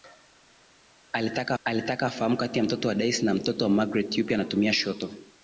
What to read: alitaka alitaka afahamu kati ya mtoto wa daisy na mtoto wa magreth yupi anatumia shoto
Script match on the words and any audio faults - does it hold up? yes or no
yes